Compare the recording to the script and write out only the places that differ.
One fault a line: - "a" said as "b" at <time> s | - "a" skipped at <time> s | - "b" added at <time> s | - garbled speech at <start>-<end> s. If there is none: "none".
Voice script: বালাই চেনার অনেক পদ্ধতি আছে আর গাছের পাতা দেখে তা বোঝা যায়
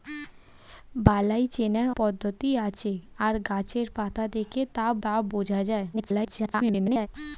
- "অনেক" skipped at 1.9 s
- "তা" added at 5.0 s
- garbled speech at 5.9-7.1 s